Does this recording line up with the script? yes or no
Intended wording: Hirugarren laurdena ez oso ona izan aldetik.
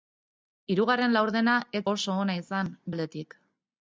yes